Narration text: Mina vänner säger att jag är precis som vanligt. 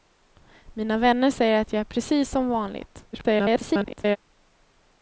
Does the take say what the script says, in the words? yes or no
no